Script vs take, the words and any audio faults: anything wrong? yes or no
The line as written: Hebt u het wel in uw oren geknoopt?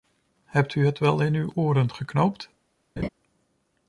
yes